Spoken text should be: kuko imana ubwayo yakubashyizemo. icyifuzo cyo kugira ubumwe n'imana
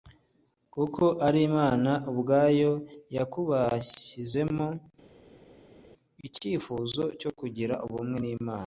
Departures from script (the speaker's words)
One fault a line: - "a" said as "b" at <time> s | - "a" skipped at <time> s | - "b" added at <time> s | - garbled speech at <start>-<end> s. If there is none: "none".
- "ari" added at 1.3 s